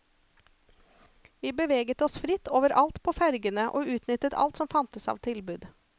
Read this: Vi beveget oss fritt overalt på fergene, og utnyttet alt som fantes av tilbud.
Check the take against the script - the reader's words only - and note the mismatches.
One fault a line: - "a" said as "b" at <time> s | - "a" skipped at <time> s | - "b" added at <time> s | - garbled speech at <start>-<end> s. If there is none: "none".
none